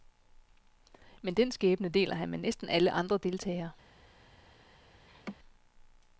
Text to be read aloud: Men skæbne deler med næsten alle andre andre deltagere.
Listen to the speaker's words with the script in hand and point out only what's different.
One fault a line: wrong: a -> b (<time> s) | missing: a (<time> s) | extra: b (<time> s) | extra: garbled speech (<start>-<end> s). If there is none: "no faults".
extra: den (1.3 s)
extra: han (2.1 s)
missing: andre (3.2 s)